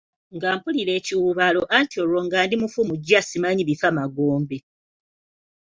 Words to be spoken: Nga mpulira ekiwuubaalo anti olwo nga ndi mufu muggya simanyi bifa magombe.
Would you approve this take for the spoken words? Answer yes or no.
yes